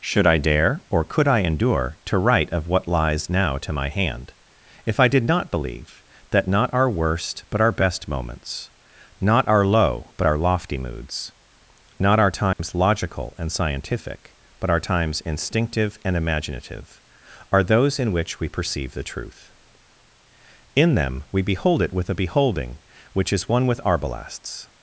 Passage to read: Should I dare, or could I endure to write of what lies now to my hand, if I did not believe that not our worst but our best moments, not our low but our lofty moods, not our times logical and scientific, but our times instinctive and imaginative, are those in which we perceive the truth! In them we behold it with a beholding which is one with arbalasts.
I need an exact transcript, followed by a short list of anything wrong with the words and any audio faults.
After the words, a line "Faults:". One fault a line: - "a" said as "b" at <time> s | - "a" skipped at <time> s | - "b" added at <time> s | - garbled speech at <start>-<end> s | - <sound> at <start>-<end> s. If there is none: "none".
Should I dare, or could I endure to write of what lies now to my hand, if I did not believe that not our worst but our best moments, not our low but our lofty moods, not our times logical and scientific, but our times instinctive and imaginative, are those in which we perceive the truth! In them we behold it with a beholding which is one with arbalasts.
Faults:
- dropout at 12.5-12.6 s